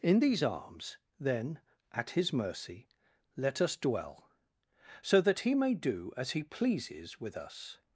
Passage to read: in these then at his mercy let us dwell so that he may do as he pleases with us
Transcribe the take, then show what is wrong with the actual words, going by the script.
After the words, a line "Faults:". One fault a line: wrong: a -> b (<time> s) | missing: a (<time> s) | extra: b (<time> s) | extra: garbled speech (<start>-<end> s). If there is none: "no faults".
in these arms then at his mercy let us dwell so that he may do as he pleases with us
Faults:
extra: arms (0.4 s)